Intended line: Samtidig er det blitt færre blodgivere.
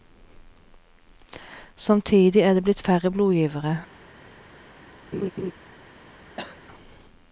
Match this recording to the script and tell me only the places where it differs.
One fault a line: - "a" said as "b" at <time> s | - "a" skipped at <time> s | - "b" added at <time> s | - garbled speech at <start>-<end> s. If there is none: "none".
none